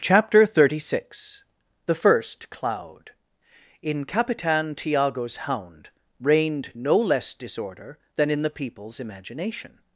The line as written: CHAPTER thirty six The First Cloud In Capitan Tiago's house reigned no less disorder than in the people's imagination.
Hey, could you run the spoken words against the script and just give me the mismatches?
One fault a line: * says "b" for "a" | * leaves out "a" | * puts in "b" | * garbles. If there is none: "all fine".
* says "hound" for "house"